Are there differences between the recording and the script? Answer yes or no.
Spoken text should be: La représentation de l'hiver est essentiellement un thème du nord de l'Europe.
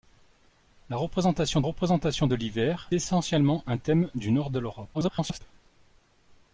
yes